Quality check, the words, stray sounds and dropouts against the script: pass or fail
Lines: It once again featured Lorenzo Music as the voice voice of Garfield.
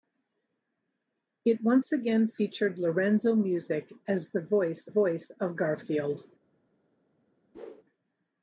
fail